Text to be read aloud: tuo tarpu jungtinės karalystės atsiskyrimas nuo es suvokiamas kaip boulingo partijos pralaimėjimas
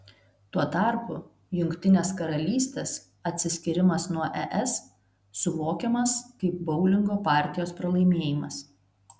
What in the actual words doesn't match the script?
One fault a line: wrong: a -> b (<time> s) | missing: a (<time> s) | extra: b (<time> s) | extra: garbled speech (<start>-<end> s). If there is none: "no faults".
no faults